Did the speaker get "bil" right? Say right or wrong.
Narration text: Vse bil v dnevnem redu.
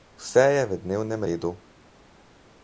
wrong